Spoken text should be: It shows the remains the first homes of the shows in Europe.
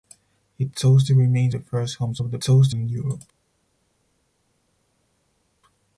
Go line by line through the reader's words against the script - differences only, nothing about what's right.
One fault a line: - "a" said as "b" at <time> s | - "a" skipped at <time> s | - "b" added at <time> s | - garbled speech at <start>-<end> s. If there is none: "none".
none